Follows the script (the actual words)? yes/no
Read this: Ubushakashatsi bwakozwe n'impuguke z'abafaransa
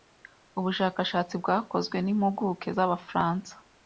yes